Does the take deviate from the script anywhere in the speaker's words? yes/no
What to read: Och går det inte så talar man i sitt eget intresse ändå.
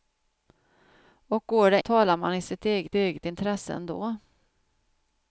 yes